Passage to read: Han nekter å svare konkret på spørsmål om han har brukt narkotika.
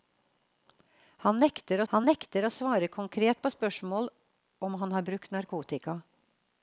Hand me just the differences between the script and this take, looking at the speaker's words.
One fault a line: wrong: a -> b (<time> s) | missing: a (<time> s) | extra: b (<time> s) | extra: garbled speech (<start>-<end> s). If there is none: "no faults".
extra: han nekter (1.9 s)